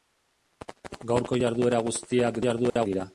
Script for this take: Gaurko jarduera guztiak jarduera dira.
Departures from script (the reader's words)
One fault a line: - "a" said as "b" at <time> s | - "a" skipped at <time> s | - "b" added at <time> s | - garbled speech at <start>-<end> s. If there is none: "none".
none